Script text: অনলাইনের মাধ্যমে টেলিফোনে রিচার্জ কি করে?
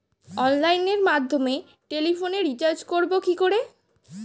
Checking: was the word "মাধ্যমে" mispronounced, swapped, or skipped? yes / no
no